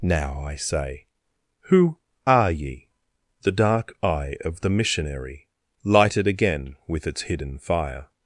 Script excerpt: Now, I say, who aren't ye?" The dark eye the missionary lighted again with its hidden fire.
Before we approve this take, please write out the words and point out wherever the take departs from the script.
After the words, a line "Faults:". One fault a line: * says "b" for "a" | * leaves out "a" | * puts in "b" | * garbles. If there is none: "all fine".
Now, I say, who are ye?" The dark eye of the missionary lighted again with its hidden fire.
Faults:
* says "are" for "aren't"
* puts in "of"